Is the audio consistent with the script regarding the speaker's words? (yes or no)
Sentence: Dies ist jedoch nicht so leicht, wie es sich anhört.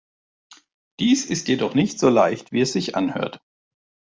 yes